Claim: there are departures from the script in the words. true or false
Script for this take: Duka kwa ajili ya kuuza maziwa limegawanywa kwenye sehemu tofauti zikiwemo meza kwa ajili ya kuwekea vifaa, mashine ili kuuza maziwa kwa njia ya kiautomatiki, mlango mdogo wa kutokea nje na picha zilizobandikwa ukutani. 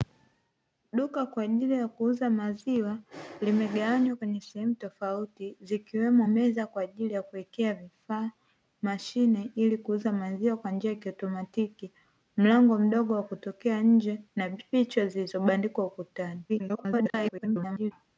true